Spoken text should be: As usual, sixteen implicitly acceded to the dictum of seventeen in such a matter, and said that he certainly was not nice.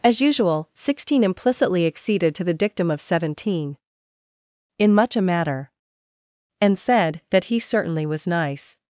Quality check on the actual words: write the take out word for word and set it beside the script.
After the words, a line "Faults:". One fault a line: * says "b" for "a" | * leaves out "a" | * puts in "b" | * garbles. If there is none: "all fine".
As usual, sixteen implicitly acceded to the dictum of seventeen in much a matter, and said that he certainly was nice.
Faults:
* says "much" for "such"
* leaves out "not"